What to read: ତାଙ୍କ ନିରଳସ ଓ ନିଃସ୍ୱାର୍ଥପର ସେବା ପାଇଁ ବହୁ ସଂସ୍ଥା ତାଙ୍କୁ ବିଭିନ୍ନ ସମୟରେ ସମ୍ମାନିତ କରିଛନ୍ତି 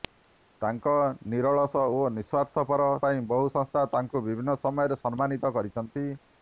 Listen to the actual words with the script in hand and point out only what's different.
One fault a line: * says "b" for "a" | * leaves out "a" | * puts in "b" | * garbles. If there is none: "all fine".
* leaves out "ସେବା"